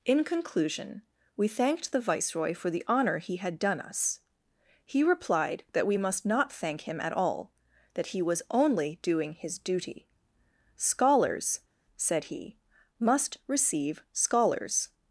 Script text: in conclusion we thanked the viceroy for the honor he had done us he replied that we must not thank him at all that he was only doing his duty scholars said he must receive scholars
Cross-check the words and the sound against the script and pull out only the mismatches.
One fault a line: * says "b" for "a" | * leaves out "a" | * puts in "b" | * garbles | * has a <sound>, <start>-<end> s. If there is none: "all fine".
all fine